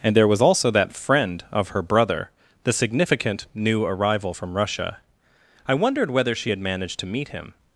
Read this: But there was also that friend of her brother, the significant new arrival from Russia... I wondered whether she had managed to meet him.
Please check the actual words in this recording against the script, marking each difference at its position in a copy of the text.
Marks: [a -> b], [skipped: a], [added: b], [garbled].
[But -> And] there was also that friend of her brother, the significant new arrival from Russia... I wondered whether she had managed to meet him.